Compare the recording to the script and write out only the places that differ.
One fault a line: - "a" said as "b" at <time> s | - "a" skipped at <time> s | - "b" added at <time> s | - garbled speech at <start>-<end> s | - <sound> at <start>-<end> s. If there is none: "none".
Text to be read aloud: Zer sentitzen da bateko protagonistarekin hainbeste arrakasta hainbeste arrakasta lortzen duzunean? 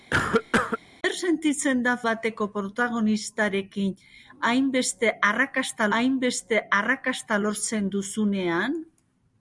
- cough at 0.1-0.8 s